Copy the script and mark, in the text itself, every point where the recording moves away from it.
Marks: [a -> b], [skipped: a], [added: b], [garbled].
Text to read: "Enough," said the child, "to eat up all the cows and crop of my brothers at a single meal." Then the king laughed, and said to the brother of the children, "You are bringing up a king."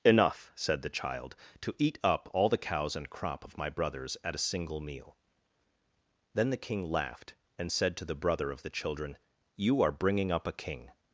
"Enough," said the child, "to eat up all the cows and crop of my brothers at a single meal." Then the king laughed, and said to the brother of the children, "You are bringing up a king."